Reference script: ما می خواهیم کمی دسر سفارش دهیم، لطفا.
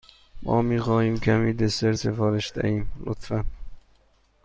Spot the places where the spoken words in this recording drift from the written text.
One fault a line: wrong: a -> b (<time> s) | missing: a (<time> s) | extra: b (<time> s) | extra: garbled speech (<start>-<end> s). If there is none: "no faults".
no faults